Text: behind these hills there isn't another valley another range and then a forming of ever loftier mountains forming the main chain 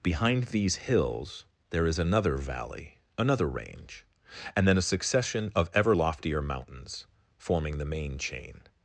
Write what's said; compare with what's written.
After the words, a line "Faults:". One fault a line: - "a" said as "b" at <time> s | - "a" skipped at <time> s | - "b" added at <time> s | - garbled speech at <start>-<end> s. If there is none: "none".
behind these hills there is another valley another range and then a succession of ever loftier mountains forming the main chain
Faults:
- "isn't" said as "is" at 1.9 s
- "forming" said as "succession" at 4.9 s